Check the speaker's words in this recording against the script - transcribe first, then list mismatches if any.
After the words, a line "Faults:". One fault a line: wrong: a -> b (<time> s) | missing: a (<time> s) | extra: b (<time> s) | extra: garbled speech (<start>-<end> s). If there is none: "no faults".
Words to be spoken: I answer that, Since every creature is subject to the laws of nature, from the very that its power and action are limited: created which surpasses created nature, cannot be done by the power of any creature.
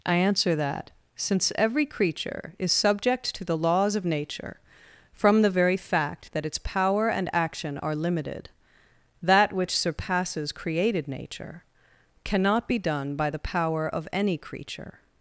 I answer that, Since every creature is subject to the laws of nature, from the very fact that its power and action are limited: that which surpasses created nature, cannot be done by the power of any creature.
Faults:
extra: fact (5.7 s)
wrong: created -> that (9.2 s)